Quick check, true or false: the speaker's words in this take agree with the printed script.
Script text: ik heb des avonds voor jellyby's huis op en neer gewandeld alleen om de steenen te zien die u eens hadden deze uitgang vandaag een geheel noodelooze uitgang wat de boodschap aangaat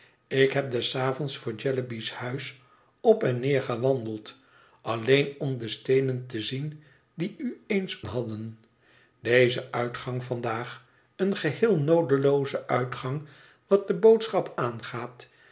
true